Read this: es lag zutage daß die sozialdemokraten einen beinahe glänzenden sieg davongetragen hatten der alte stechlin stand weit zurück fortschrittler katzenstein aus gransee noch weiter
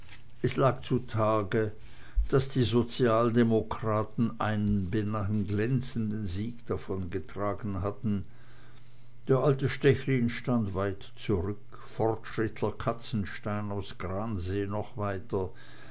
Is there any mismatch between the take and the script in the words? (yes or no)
no